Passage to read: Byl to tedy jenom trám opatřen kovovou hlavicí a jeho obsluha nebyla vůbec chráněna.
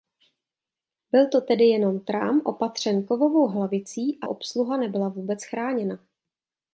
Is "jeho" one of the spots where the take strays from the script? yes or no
yes